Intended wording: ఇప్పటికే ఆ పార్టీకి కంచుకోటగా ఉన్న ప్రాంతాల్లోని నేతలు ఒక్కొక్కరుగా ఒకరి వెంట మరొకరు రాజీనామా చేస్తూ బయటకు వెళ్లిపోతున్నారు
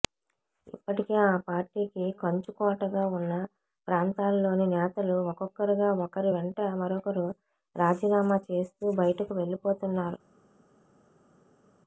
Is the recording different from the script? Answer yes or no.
no